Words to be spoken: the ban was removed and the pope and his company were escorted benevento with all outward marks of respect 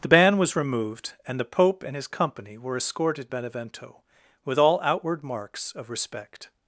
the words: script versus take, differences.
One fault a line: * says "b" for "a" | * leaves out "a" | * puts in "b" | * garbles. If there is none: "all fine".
all fine